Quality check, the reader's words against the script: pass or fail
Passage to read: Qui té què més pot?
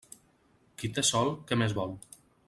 fail